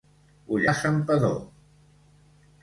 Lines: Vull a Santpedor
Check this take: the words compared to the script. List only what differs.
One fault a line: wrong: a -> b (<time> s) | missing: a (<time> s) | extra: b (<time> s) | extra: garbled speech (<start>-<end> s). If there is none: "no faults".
no faults